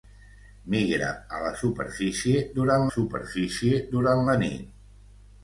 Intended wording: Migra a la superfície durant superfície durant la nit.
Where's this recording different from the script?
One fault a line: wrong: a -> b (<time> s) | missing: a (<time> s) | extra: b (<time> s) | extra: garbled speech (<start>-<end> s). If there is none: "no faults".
no faults